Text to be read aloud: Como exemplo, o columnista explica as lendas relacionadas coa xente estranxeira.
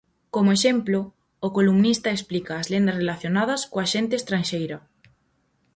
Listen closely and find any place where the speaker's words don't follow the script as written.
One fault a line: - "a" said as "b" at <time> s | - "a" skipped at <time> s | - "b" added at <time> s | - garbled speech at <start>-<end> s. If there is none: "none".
none